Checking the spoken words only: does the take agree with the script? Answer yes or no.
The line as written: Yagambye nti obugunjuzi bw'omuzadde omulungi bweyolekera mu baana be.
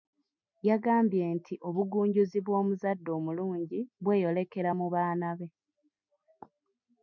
yes